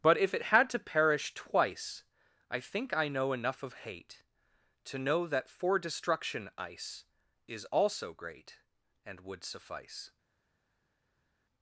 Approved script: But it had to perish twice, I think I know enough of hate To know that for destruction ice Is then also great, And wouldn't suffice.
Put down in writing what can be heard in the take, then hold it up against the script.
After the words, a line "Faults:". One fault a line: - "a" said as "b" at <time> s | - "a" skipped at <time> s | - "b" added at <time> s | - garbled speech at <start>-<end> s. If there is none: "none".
But if it had to perish twice, I think I know enough of hate To know that for destruction ice Is also great, And would suffice.
Faults:
- "if" added at 0.2 s
- "then" skipped at 7.7 s
- "wouldn't" said as "would" at 9.2 s